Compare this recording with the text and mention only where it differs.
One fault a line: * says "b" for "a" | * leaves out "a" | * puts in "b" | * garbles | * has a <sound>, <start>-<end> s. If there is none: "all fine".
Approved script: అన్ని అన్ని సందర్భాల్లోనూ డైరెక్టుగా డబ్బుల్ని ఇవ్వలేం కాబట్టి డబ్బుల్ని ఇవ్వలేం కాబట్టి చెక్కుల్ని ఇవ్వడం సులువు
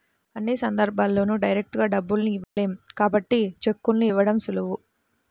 * leaves out "అన్ని"
* has a dropout, 2.4-2.6 s
* leaves out "డబ్బుల్ని ఇవ్వలేం కాబట్టి"